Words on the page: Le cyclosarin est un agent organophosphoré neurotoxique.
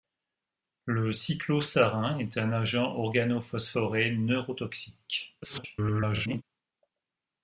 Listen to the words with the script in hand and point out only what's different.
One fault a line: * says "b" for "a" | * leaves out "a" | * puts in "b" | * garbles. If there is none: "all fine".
* garbles